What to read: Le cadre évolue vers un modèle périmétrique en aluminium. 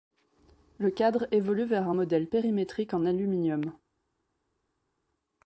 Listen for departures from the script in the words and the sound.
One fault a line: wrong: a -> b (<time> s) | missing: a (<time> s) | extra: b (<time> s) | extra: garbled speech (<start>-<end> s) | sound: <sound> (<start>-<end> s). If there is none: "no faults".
no faults